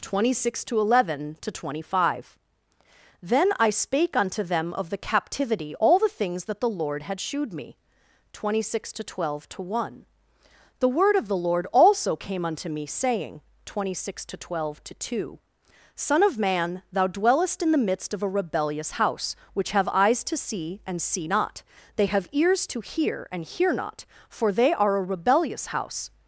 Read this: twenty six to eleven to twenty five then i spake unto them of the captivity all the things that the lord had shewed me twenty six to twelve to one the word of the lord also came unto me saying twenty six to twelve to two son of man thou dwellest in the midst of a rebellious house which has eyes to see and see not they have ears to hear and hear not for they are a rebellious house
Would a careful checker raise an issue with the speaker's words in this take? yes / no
yes